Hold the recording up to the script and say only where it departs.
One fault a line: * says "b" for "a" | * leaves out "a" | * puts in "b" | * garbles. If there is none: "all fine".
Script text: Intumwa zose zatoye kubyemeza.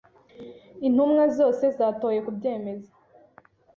all fine